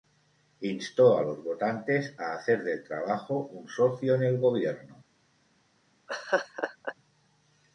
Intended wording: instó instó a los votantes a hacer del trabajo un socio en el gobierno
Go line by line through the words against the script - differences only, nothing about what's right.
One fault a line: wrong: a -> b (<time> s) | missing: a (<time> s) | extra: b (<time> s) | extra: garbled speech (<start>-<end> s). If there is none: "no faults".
missing: instó (1.1 s)